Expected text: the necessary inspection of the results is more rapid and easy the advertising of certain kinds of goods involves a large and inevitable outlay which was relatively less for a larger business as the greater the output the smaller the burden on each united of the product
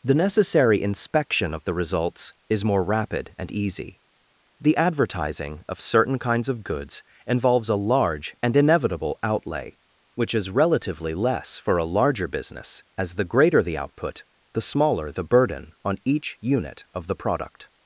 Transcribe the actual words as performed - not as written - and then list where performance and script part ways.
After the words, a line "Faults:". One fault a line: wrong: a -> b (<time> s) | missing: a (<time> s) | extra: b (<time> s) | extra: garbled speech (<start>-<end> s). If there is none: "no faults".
the necessary inspection of the results is more rapid and easy the advertising of certain kinds of goods involves a large and inevitable outlay which is relatively less for a larger business as the greater the output the smaller the burden on each unit of the product
Faults:
wrong: was -> is (10.3 s)
wrong: united -> unit (16.4 s)